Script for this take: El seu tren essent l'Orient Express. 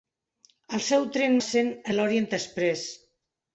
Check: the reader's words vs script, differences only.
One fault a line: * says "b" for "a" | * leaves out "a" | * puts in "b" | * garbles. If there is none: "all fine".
all fine